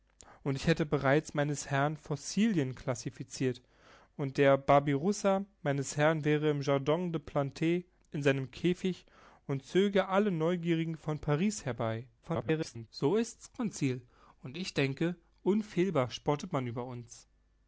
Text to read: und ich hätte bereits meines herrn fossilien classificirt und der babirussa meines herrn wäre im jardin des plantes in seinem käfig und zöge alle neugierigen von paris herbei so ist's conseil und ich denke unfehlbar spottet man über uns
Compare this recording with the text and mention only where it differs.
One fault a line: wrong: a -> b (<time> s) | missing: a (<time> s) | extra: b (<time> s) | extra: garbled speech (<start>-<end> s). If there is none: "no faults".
extra: garbled speech (12.2-12.9 s)